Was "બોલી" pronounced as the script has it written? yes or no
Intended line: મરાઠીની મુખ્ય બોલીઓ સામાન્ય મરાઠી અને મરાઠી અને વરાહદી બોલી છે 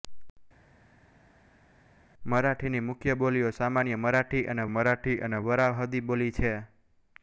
yes